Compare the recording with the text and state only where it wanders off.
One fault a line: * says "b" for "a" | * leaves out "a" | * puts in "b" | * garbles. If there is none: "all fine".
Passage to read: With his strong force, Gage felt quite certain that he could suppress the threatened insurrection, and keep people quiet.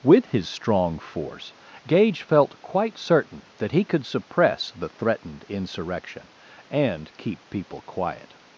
all fine